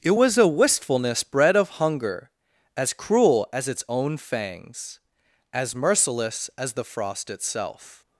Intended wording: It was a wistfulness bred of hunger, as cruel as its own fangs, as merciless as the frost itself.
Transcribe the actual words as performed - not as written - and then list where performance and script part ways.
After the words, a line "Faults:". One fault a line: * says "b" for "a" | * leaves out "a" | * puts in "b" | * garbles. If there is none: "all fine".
It was a wistfulness bred of hunger, as cruel as its own fangs, as merciless as the frost itself.
Faults:
all fine